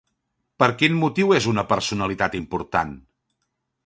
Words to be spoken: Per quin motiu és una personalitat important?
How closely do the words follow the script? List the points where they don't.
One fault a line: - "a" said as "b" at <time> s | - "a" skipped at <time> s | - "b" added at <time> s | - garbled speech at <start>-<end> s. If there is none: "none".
none